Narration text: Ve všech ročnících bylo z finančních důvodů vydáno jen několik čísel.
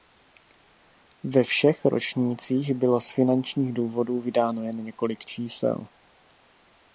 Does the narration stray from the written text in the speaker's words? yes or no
no